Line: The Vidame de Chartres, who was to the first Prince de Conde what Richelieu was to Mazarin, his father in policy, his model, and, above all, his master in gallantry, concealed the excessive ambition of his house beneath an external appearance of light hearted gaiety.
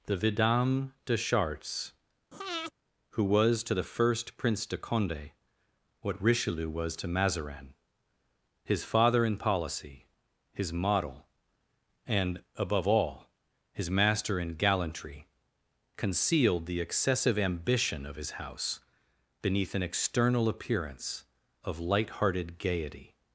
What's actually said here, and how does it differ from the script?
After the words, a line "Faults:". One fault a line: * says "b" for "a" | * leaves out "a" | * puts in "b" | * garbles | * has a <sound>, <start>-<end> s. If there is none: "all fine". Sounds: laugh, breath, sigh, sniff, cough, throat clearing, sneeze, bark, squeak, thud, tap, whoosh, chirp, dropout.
The Vidame de Chartres, who was to the first Prince de Conde what Richelieu was to Mazarin, his father in policy, his model, and, above all, his master in gallantry, concealed the excessive ambition of his house beneath an external appearance of light hearted gaiety.
Faults:
* has a breath, 2.3-2.7 s